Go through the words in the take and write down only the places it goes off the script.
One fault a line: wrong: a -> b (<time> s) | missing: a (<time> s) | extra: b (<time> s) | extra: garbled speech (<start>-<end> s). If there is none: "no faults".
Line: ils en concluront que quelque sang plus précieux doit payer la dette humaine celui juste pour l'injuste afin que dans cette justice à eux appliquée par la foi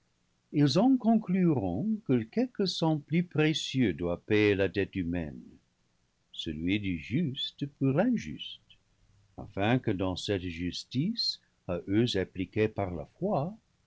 extra: du (6.8 s)